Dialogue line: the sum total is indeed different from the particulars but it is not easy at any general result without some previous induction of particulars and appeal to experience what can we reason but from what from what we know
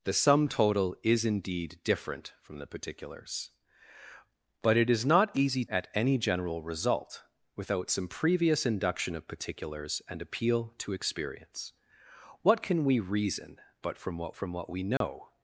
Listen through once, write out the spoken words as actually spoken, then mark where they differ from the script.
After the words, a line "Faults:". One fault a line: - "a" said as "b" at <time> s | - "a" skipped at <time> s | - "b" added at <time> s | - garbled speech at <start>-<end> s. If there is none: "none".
the sum total is indeed different from the particulars but it is not easy at any general result without some previous induction of particulars and appeal to experience what can we reason but from what from what we know
Faults:
none